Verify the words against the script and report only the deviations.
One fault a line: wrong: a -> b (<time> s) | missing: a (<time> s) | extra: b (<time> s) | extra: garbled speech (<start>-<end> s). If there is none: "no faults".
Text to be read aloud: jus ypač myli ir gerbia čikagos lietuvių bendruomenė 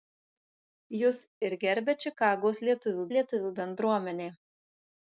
missing: ypač myli (1.2 s)
extra: lietuvių (3.2 s)